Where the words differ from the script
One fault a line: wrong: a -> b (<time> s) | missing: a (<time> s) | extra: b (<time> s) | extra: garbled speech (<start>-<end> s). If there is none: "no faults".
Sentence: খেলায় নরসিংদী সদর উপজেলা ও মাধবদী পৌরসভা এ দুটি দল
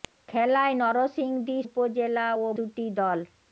missing: সদর (1.6 s)
missing: মাধবদী পৌরসভা এ (2.6 s)